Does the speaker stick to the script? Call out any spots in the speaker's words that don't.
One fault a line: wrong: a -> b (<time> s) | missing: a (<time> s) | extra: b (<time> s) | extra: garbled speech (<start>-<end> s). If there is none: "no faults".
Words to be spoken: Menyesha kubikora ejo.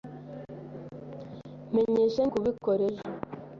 no faults